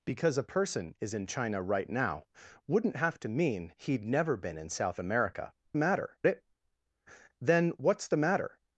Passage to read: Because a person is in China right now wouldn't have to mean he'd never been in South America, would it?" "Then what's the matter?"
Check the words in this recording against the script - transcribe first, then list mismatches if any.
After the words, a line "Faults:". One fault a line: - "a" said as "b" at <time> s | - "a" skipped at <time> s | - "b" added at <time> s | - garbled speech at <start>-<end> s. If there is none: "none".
Because a person is in China right now wouldn't have to mean he'd never been in South America, matter it?" "Then what's the matter?"
Faults:
- "would" said as "matter" at 5.8 s